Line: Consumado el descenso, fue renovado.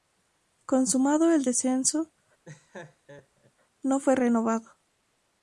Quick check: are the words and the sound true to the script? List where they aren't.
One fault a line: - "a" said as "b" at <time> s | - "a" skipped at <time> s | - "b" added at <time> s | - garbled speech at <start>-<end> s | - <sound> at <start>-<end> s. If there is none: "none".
- laugh at 2.4-3.5 s
- "no" added at 3.8 s